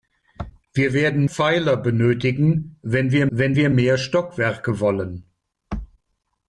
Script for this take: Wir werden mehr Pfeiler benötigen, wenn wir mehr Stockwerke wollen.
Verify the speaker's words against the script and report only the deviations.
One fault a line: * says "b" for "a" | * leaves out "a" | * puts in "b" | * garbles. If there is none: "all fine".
* leaves out "mehr"
* puts in "wenn wir"